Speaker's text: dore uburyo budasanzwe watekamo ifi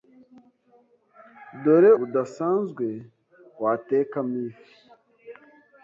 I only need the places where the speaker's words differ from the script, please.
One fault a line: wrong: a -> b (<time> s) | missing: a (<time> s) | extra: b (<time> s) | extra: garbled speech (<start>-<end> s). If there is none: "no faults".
missing: uburyo (1.9 s)